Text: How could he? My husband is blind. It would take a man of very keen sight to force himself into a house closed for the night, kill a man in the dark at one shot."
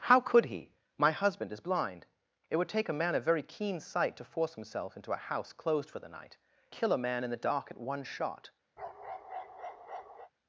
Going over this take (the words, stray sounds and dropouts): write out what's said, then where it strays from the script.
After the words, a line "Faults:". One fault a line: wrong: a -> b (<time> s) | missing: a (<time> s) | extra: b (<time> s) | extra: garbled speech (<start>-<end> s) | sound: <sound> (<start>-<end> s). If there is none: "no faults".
How could he? My husband is blind. It would take a man of very keen sight to force himself into a house closed for the night, kill a man in the dark at one shot."
Faults:
sound: bark (8.8-10.3 s)